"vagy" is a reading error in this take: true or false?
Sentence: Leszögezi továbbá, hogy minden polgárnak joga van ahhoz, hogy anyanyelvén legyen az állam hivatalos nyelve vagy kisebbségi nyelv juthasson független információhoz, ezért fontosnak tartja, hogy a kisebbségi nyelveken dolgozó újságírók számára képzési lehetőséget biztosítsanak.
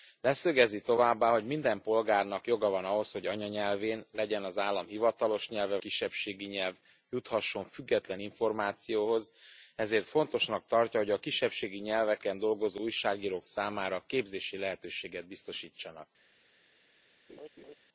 true